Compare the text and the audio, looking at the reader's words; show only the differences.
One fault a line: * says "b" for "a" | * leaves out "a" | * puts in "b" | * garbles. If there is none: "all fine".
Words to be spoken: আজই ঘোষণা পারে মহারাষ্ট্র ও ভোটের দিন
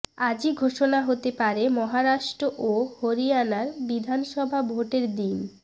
* puts in "হতে"
* puts in "হরিয়ানার বিধানসভা"